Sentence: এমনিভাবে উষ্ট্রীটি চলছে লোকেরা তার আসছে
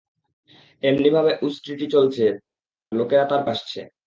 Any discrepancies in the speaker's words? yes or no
no